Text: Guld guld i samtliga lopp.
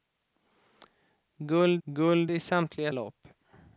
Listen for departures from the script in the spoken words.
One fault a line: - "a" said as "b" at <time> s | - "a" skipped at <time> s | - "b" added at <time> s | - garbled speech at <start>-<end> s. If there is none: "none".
none